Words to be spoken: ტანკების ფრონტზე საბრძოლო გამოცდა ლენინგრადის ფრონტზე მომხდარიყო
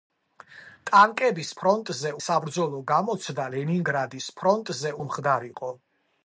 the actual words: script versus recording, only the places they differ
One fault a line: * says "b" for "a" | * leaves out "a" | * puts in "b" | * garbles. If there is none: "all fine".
all fine